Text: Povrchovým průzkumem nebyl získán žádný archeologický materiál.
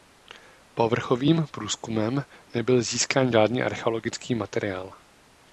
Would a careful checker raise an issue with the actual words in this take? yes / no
no